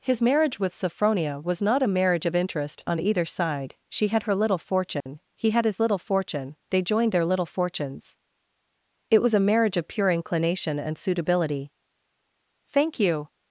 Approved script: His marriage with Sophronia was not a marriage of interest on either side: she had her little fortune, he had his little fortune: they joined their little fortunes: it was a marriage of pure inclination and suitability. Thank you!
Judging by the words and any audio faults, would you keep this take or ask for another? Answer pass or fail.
fail